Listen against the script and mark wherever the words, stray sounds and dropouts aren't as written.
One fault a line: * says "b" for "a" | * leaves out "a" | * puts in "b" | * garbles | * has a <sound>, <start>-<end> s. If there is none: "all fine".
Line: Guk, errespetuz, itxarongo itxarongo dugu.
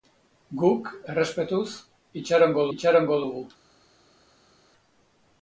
all fine